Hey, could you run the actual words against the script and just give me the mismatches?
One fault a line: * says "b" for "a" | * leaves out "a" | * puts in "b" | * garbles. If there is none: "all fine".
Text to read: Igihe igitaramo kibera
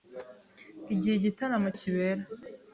all fine